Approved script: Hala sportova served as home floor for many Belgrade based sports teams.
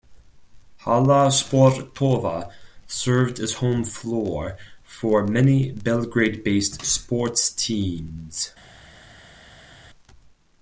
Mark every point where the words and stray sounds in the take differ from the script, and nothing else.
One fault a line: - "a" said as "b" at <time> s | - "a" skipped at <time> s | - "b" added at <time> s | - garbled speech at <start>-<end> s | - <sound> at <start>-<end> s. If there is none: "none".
none